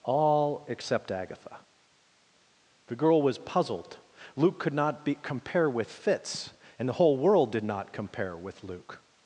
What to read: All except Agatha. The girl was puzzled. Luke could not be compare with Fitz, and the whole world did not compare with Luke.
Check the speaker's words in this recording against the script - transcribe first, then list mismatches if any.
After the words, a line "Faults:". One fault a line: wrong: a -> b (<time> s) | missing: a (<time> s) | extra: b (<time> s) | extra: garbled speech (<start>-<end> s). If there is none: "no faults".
All except Agatha. The girl was puzzled. Luke could not be compare with Fitz, and the whole world did not compare with Luke.
Faults:
no faults